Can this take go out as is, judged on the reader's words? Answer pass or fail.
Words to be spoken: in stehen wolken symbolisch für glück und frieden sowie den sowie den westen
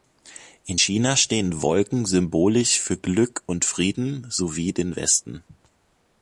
fail